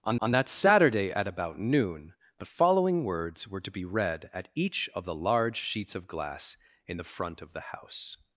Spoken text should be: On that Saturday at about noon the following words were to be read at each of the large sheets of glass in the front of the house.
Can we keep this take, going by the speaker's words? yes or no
no